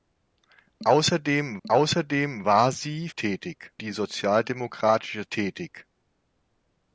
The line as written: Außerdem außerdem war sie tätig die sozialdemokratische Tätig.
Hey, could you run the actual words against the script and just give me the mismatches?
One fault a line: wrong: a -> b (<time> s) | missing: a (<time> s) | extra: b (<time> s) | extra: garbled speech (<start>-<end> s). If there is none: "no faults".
no faults